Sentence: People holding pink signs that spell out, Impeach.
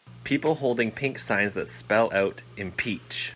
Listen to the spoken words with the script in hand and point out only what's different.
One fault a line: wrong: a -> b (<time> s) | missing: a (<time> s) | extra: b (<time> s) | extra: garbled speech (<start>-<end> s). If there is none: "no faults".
no faults